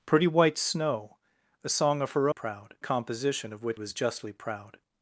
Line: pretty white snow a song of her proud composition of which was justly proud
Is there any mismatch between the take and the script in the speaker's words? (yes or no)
no